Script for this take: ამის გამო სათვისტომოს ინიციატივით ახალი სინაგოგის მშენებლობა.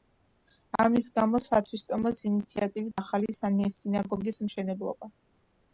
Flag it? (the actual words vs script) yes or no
no